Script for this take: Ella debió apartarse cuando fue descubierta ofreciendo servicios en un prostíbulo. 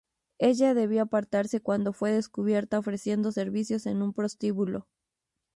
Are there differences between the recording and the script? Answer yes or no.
no